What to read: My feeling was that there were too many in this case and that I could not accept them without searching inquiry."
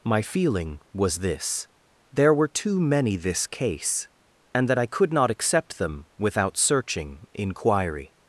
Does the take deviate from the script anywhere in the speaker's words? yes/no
yes